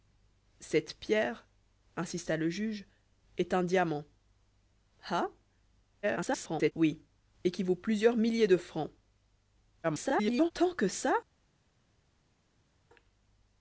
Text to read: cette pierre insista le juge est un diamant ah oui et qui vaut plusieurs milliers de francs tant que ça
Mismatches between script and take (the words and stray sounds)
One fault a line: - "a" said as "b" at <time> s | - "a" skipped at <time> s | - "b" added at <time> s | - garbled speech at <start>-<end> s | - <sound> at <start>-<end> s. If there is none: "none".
- garbled speech at 6.0-6.7 s
- garbled speech at 9.8-10.5 s